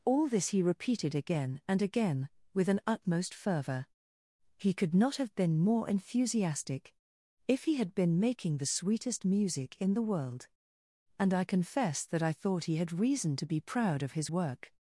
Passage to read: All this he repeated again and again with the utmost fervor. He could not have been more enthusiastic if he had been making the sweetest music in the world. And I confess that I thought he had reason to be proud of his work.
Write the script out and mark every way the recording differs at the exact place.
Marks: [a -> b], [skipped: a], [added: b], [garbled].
All this he repeated again and again with [the -> an] utmost fervor. He could not have been more enthusiastic if he had been making the sweetest music in the world. And I confess that I thought he had reason to be proud of his work.